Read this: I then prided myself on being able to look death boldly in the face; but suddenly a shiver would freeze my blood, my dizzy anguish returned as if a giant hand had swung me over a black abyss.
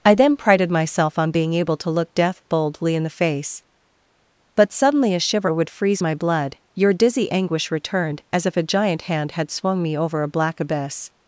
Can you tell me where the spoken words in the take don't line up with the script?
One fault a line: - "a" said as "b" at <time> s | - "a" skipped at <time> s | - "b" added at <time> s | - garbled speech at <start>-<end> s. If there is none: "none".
- "my" said as "your" at 6.7 s